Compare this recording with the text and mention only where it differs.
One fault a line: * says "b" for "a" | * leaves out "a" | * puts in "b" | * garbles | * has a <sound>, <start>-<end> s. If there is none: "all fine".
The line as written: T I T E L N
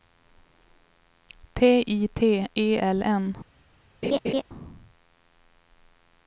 * has a laugh, 4.0-4.4 s